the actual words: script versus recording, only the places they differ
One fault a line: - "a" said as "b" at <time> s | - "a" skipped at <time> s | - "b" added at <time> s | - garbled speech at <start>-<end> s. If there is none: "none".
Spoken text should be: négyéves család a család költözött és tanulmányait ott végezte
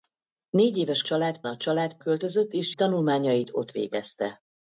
none